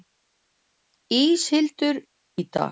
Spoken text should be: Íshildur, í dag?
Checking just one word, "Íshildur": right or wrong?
right